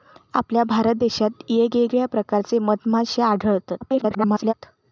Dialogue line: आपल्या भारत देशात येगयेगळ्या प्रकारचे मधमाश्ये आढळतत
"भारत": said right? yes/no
yes